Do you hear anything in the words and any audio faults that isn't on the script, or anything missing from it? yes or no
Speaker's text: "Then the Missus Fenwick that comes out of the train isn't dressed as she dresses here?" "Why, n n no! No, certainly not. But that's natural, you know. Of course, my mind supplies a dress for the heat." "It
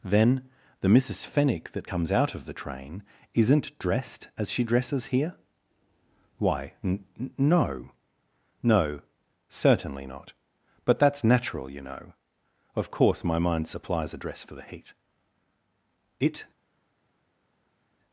no